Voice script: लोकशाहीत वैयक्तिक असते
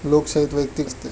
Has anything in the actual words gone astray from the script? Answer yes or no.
no